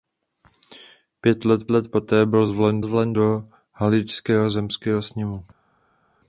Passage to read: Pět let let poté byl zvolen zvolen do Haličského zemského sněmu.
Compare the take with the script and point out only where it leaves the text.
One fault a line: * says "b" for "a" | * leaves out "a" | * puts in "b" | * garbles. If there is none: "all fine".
all fine